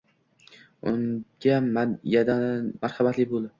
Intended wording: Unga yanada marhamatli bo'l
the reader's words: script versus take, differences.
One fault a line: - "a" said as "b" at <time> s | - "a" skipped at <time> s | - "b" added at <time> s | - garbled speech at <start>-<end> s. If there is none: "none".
- "yanada" skipped at 1.6 s